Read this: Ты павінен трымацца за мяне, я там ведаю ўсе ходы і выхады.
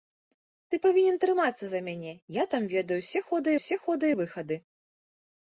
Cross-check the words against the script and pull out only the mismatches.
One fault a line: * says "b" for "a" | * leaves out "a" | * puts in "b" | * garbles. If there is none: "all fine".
* puts in "ўсе ходы"